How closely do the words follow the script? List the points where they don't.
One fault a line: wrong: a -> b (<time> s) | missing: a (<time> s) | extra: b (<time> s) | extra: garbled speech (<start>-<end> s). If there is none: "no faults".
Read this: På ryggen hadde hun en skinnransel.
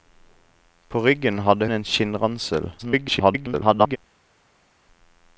missing: hun (1.7 s)
extra: garbled speech (2.8-4.0 s)